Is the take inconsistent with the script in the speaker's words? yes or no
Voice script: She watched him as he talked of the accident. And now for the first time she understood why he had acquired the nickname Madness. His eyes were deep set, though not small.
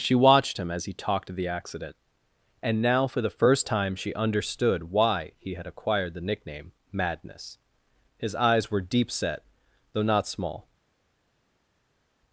no